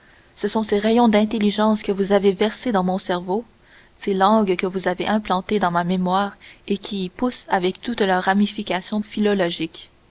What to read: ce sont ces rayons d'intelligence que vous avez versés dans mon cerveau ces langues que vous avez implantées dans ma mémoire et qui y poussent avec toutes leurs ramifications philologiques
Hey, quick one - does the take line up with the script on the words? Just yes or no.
yes